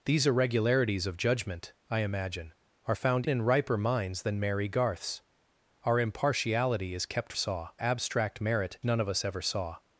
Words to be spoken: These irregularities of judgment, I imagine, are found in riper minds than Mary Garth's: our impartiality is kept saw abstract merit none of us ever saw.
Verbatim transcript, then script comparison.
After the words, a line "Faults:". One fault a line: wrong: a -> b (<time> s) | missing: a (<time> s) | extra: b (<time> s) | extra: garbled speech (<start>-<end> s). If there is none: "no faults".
These irregularities of judgment, I imagine, are found in riper minds than Mary Garth's: our impartiality is kept saw abstract merit none of us ever saw.
Faults:
no faults